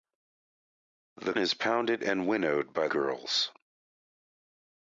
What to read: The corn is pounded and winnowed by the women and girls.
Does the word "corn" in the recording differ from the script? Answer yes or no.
yes